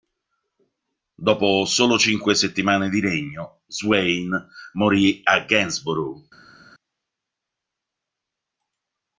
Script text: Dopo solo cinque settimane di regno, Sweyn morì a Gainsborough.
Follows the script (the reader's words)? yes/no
yes